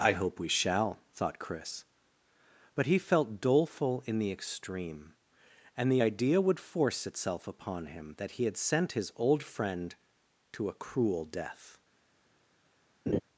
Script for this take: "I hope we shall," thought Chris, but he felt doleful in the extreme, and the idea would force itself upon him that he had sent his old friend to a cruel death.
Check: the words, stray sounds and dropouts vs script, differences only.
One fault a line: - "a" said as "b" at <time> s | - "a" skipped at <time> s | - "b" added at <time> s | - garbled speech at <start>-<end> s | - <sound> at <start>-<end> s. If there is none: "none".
- laugh at 13.1-13.2 s